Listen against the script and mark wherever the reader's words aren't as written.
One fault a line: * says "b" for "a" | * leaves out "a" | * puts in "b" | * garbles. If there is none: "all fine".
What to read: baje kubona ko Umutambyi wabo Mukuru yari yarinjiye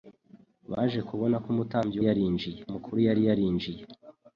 * says "yarinjiye" for "wabo"